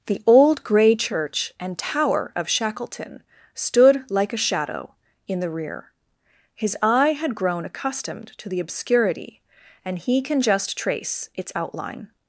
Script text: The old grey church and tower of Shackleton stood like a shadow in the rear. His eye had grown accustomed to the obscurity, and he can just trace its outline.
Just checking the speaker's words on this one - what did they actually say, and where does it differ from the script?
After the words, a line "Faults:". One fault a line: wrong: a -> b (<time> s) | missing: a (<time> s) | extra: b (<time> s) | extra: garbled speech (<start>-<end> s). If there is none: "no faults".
The old grey church and tower of Shackleton stood like a shadow in the rear. His eye had grown accustomed to the obscurity, and he can just trace its outline.
Faults:
no faults